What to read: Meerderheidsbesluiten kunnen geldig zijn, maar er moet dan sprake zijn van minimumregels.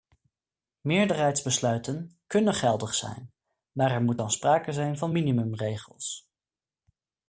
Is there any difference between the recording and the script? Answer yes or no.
no